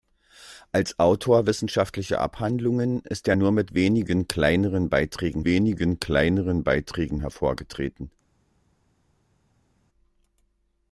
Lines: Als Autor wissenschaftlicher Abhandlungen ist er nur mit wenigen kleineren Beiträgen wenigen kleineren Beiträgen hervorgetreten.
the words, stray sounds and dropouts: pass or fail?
pass